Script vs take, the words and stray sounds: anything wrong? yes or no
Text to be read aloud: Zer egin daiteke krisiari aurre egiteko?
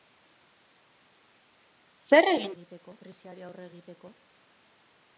yes